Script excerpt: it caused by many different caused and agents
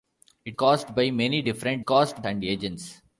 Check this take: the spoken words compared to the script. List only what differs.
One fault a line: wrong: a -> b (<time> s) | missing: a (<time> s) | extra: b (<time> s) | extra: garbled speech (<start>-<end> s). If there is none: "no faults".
no faults